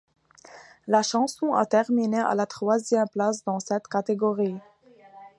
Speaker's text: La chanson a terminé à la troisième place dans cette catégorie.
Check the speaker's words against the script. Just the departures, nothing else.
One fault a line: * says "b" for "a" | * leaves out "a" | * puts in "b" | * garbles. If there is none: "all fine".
all fine